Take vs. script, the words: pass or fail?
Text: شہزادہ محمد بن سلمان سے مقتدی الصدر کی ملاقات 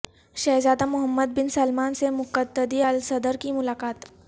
pass